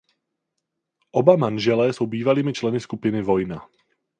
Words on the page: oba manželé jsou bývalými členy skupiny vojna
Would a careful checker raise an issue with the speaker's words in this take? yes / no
no